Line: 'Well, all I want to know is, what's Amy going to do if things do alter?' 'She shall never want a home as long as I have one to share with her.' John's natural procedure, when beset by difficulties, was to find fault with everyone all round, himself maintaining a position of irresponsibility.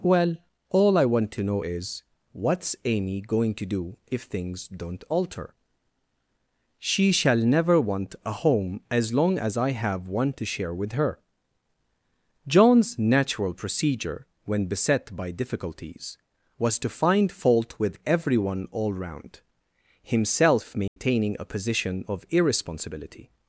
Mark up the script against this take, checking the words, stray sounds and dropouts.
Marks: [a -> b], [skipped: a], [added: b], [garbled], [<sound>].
'Well, all I want to know is, what's Amy going to do if things [do -> don't] alter?' 'She shall never want a home as long as I have one to share with her.' John's natural procedure, when beset by difficulties, was to find fault with everyone all round, himself maintaining [dropout] a position of irresponsibility.